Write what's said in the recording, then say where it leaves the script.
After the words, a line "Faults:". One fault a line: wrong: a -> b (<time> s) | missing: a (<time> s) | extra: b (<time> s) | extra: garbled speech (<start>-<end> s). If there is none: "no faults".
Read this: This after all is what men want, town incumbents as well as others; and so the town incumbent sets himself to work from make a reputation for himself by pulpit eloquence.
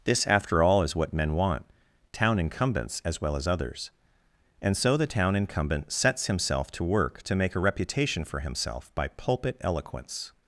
This after all is what men want, town incumbents as well as others; and so the town incumbent sets himself to work to make a reputation for himself by pulpit eloquence.
Faults:
wrong: from -> to (7.2 s)